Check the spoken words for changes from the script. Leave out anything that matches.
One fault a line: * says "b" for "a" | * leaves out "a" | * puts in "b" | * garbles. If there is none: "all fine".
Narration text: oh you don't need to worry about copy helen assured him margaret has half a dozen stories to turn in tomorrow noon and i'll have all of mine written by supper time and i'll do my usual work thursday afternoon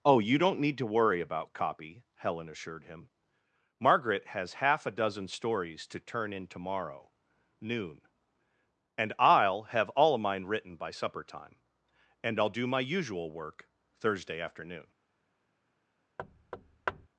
all fine